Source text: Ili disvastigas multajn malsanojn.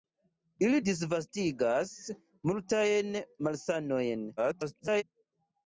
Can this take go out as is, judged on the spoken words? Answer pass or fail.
fail